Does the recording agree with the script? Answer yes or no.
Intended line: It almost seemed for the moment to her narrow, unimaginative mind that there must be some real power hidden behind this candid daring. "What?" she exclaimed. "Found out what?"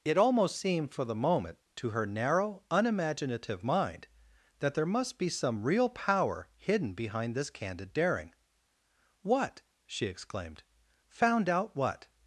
yes